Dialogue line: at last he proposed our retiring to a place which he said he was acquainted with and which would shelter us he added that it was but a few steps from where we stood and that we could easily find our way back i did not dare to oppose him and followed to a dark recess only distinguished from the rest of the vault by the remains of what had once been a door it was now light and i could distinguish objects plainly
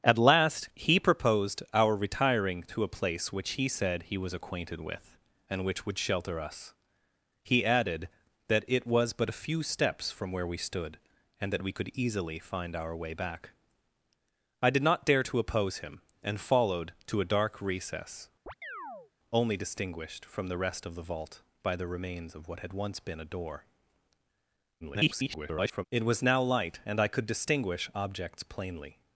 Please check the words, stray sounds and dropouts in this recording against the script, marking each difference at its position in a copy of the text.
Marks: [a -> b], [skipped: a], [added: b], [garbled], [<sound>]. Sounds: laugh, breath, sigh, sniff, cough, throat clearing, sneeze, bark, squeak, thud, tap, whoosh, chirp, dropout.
at last he proposed our retiring to a place which he said he was acquainted with and which would shelter us he added that it was but a few steps from where we stood and that we could easily find our way back i did not dare to oppose him and followed to a dark recess [chirp] only distinguished from the rest of the vault by the remains of what had once been a door [garbled] it was now light and i could distinguish objects plainly